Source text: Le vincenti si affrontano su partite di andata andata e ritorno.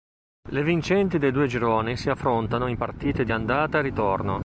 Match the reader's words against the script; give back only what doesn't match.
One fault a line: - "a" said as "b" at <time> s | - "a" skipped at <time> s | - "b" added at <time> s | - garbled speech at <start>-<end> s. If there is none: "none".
- "dei due gironi" added at 1.2 s
- "su" said as "in" at 2.6 s
- "andata" skipped at 3.8 s